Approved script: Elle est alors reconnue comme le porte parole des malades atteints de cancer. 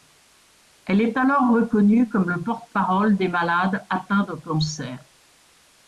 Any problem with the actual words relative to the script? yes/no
no